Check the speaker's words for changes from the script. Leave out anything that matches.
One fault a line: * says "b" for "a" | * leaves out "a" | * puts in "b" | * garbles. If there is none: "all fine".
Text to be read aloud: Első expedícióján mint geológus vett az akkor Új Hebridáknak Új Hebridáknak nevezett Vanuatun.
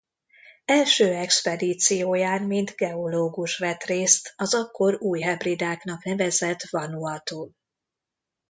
* puts in "részt"
* leaves out "Új Hebridáknak"